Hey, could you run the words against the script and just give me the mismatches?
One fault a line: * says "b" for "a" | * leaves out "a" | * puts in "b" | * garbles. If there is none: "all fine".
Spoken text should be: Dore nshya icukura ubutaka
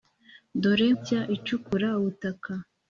all fine